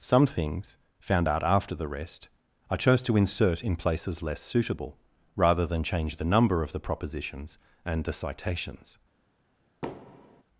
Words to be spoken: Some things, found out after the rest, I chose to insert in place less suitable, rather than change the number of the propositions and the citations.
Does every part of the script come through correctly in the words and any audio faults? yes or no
no